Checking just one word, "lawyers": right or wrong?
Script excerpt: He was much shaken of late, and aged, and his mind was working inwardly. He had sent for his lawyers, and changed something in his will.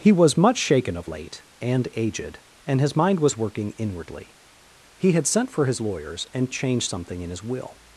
right